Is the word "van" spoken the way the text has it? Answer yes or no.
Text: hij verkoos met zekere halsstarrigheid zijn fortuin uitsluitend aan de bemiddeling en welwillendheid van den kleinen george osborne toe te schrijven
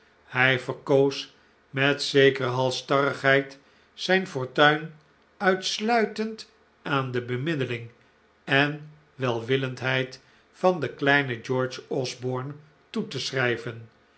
yes